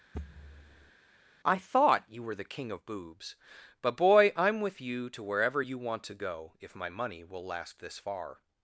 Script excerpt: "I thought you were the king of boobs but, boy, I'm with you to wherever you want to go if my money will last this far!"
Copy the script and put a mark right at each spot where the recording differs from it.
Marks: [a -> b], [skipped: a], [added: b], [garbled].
"I thought you were the king of boobs but, boy, I'm with you to wherever you want to go if my money will last this far!"